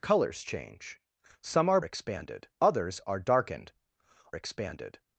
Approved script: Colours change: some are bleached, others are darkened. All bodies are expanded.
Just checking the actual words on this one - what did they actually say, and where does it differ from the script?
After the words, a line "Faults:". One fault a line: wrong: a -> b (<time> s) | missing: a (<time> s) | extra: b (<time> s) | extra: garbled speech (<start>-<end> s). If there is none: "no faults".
Colours change: some are expanded, others are darkened. Expanded.
Faults:
wrong: bleached -> expanded (1.8 s)
missing: All bodies are (3.7 s)